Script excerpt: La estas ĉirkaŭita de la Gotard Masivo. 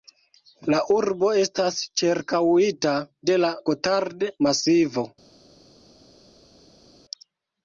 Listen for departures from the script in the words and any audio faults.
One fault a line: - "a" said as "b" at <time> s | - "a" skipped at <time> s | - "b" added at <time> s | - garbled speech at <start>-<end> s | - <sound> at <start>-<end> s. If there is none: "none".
- "urbo" added at 0.9 s